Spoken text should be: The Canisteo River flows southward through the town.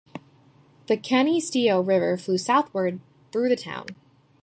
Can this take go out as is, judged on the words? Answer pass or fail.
pass